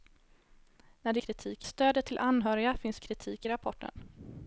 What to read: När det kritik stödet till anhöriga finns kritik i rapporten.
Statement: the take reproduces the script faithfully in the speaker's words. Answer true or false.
true